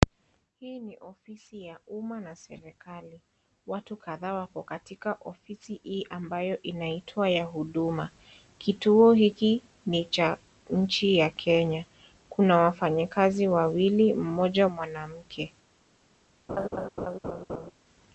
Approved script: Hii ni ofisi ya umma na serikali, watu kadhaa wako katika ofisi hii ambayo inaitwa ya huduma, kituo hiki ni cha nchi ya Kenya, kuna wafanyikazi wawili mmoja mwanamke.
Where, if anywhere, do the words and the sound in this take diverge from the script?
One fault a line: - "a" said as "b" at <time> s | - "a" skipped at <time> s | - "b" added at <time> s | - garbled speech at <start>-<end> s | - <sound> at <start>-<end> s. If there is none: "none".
- laugh at 16.5-17.7 s